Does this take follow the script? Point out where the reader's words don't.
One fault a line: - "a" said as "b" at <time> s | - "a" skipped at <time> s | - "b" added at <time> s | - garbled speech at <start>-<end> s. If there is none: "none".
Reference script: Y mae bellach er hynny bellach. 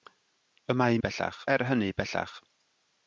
none